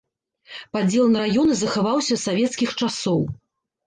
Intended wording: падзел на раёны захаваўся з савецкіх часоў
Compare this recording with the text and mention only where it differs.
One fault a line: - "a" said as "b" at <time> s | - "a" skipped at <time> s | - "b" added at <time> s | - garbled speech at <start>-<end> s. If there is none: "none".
none